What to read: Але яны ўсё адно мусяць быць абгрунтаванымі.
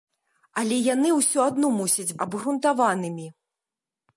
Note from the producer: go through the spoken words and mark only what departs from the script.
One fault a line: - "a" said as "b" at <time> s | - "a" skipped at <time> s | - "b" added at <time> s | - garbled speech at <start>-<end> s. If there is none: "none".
- "быць" skipped at 2.2 s